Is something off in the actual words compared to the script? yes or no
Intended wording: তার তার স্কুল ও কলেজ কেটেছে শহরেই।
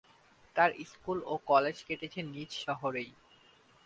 yes